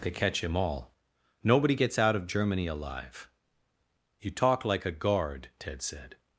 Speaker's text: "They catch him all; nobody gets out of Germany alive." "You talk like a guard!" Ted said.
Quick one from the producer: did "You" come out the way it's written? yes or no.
yes